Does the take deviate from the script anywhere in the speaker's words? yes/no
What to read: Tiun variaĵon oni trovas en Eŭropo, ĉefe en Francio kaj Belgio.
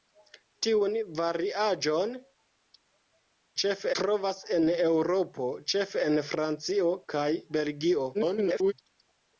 yes